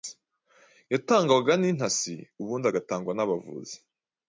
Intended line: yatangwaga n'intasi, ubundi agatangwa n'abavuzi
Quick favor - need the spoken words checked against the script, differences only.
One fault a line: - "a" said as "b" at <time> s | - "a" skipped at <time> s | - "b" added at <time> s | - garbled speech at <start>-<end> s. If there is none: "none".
none